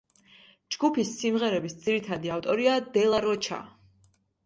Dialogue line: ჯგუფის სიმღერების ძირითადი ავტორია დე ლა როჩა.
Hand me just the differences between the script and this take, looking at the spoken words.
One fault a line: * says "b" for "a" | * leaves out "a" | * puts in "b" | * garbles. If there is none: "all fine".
all fine